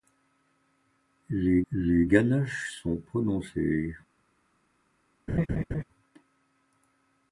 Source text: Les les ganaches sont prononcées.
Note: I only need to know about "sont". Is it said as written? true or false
true